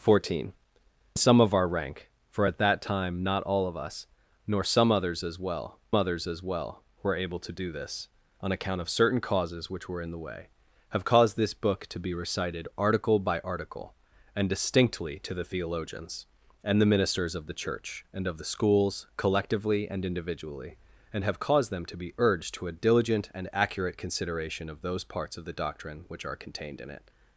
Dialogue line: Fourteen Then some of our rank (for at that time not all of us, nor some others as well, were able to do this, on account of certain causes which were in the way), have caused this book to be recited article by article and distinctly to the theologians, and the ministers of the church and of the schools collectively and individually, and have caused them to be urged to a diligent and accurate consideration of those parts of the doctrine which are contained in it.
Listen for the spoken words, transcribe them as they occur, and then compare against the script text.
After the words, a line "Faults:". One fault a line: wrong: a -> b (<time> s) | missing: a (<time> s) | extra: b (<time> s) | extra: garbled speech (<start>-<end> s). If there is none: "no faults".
Fourteen Some of our rank (for at that time not all of us, nor some others as well others as well, were able to do this, on account of certain causes which were in the way), have caused this book to be recited article by article and distinctly to the theologians, and the ministers of the church and of the schools collectively and individually, and have caused them to be urged to a diligent and accurate consideration of those parts of the doctrine which are contained in it.
Faults:
missing: Then (0.5 s)
extra: others as well (6.0 s)